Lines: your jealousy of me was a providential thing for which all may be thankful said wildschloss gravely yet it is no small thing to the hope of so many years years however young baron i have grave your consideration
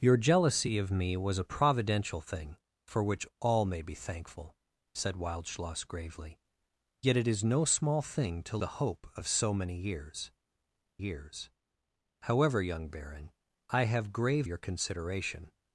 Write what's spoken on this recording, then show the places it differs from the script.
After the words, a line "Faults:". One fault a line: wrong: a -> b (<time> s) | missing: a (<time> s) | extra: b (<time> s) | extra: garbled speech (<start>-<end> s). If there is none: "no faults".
your jealousy of me was a providential thing for which all may be thankful said wildschloss gravely yet it is no small thing to the hope of so many years years however young baron i have grave your consideration
Faults:
no faults